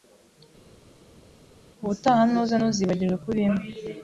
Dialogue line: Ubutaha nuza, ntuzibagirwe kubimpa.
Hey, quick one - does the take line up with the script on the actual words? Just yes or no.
yes